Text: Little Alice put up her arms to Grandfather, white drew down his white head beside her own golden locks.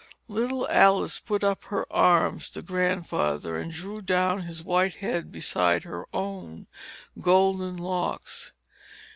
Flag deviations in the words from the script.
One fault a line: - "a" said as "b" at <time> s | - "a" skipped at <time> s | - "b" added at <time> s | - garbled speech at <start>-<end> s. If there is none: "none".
- "white" said as "and" at 3.6 s